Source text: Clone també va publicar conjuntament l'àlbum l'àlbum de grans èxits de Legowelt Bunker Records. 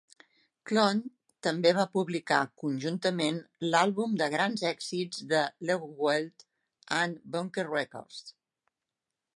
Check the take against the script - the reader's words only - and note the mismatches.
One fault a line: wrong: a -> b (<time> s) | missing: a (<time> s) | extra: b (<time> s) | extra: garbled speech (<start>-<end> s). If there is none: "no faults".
missing: l'àlbum (4.2 s)
extra: amb (7.0 s)